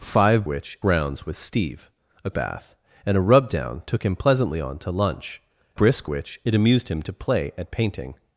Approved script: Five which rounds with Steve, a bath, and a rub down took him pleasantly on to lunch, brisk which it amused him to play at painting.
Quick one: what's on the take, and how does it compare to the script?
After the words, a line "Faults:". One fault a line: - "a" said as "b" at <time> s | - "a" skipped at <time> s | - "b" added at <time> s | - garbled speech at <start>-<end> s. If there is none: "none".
Five which rounds with Steve, a bath, and a rub down took him pleasantly on to lunch, brisk which it amused him to play at painting.
Faults:
none